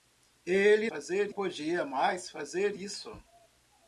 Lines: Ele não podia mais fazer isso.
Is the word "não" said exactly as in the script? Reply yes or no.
no